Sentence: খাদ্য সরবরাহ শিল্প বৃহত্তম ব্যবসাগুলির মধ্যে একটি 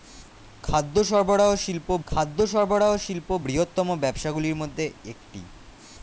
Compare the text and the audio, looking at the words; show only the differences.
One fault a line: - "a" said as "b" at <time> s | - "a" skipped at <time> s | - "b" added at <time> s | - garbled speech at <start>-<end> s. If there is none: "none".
- "খাদ্য সরবরাহ শিল্প" added at 2.1 s